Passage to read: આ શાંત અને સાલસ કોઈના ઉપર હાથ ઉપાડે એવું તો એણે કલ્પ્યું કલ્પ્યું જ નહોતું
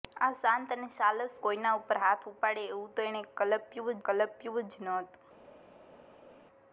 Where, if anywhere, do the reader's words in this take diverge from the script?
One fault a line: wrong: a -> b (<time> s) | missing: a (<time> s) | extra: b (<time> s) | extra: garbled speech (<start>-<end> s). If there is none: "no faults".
no faults